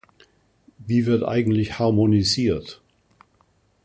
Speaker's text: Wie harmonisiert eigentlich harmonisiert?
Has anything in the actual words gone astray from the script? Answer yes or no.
yes